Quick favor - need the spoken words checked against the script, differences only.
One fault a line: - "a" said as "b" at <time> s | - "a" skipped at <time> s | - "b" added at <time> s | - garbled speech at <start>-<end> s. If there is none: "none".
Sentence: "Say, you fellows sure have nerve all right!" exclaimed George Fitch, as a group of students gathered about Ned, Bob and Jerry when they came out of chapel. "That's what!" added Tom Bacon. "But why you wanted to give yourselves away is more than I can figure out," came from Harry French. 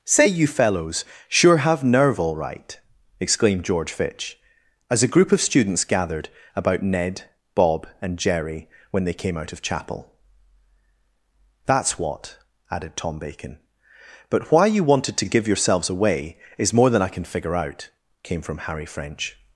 none